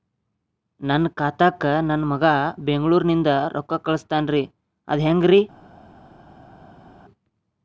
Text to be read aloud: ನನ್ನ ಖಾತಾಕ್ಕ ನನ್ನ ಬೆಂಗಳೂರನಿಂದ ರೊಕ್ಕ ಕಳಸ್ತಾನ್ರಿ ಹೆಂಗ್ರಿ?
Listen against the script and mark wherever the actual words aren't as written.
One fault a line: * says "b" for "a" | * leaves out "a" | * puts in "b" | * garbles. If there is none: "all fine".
* puts in "ಮಗಾ"
* puts in "ಅದ"